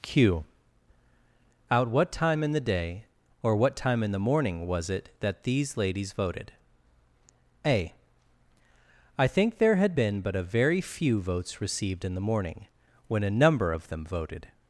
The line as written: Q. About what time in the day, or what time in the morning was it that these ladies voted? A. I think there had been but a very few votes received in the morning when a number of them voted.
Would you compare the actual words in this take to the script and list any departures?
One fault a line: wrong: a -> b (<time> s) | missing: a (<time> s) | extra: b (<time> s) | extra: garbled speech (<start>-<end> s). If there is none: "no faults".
wrong: About -> Out (1.7 s)